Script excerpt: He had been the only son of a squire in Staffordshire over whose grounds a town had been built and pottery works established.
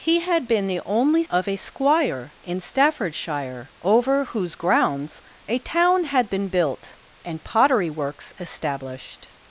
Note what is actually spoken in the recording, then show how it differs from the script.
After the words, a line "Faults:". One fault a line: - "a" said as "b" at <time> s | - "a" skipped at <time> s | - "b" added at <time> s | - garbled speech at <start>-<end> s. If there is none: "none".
He had been the only of a squire in Staffordshire over whose grounds a town had been built and pottery works established.
Faults:
- "son" skipped at 1.2 s